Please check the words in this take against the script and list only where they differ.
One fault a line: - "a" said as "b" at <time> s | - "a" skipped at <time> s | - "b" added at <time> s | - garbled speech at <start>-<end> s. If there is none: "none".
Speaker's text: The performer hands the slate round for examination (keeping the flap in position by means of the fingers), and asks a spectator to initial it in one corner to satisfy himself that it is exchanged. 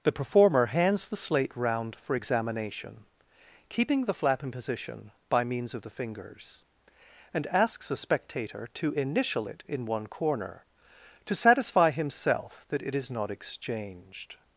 - "not" added at 13.1 s